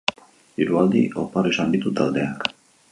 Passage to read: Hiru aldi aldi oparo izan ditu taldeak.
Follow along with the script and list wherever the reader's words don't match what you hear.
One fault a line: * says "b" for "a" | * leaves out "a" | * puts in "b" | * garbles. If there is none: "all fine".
* leaves out "aldi"